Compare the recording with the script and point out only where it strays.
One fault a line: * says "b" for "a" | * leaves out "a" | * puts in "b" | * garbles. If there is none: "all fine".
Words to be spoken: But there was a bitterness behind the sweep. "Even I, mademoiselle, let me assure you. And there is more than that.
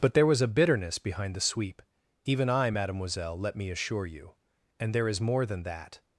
all fine